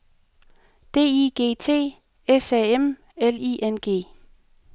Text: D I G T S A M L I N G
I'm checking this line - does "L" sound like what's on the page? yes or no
yes